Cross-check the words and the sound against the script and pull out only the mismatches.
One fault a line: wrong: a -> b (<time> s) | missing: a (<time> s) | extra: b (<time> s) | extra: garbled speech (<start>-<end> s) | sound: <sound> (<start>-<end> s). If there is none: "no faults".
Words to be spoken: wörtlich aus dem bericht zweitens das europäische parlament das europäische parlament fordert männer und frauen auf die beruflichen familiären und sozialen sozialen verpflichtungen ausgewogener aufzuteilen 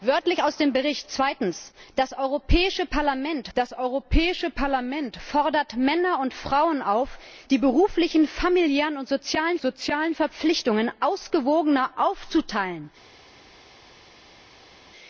no faults